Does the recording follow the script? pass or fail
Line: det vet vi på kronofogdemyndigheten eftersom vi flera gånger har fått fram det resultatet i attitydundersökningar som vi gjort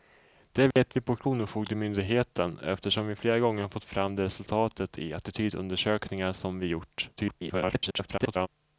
fail